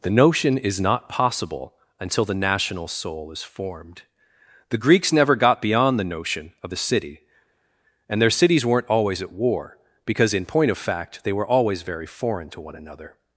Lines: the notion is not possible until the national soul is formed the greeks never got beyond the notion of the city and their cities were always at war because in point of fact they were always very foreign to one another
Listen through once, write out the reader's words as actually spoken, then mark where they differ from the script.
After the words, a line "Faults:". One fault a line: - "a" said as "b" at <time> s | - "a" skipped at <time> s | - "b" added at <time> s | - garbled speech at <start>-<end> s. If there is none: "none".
the notion is not possible until the national soul is formed the greeks never got beyond the notion of the city and their cities weren't always at war because in point of fact they were always very foreign to one another
Faults:
- "were" said as "weren't" at 8.6 s